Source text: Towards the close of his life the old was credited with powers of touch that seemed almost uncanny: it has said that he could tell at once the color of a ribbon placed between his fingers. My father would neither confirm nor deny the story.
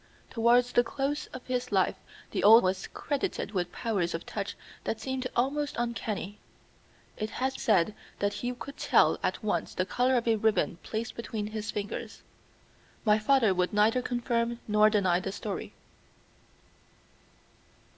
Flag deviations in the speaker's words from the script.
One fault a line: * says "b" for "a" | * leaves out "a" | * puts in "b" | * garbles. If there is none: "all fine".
all fine